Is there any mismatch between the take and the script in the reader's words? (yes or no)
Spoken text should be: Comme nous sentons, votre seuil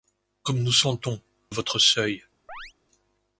no